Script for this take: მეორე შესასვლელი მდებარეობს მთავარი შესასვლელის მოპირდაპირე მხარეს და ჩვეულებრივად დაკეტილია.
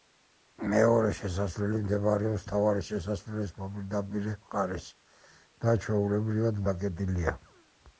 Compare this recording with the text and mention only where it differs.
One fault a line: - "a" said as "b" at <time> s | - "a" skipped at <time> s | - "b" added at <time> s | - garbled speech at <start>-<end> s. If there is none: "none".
none